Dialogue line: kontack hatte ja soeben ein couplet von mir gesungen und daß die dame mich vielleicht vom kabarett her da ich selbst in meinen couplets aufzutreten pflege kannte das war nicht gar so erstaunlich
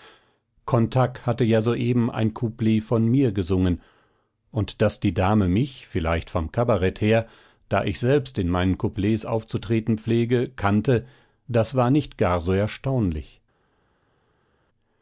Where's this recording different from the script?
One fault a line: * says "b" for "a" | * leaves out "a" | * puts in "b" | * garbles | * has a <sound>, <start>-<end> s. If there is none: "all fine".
all fine